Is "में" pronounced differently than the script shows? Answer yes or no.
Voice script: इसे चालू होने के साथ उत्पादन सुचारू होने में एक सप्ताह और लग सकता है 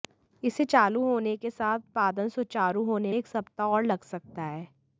yes